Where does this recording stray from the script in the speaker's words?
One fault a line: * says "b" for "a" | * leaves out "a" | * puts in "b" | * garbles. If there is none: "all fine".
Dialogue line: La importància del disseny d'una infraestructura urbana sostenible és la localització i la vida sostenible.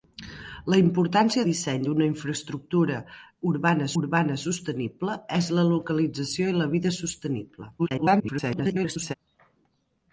* leaves out "del"
* puts in "urbana"
* garbles